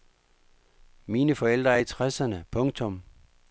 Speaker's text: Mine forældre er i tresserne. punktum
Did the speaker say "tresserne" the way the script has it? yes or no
yes